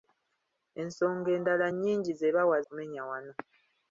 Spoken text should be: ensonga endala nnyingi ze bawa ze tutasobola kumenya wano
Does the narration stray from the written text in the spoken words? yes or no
yes